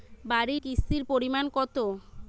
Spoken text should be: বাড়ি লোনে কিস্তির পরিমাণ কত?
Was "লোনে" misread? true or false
true